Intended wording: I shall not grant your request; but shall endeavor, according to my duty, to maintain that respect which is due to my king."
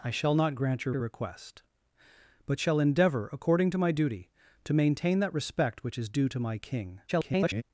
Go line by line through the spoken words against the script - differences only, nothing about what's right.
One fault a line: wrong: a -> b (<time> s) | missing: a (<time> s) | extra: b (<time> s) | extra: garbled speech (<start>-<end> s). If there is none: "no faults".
extra: your (0.9 s)
extra: garbled speech (7.1-7.6 s)